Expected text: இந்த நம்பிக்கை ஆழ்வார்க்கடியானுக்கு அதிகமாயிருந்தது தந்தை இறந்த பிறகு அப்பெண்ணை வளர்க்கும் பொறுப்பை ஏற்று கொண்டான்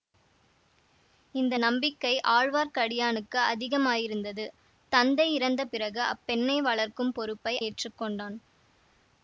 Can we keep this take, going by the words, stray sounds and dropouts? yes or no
yes